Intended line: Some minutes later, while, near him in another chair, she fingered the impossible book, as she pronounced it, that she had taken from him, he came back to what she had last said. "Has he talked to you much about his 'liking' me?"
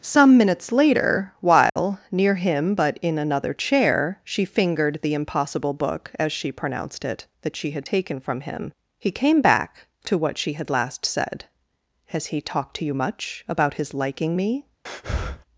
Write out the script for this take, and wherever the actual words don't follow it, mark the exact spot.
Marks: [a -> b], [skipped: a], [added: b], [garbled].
Some minutes later, while, near him [added: but] in another chair, she fingered the impossible book, as she pronounced it, that she had taken from him, he came back to what she had last said. "Has he talked to you much about his 'liking' me?"